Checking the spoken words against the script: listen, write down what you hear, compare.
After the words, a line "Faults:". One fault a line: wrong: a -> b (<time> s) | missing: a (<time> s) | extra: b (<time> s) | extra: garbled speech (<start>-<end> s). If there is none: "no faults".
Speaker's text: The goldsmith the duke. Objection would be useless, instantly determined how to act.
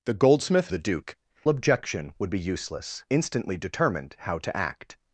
The goldsmith the duke. Objection would be useless, instantly determined how to act.
Faults:
no faults